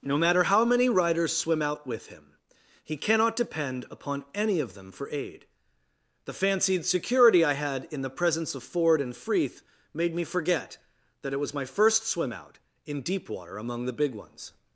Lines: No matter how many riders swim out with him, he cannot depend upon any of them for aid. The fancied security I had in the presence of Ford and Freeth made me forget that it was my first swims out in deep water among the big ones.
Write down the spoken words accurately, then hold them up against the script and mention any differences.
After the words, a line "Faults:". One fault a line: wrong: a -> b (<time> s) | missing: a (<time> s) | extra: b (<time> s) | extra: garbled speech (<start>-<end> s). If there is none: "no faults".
No matter how many riders swim out with him, he cannot depend upon any of them for aid. The fancied security I had in the presence of Ford and Freeth made me forget that it was my first swim out in deep water among the big ones.
Faults:
wrong: swims -> swim (12.1 s)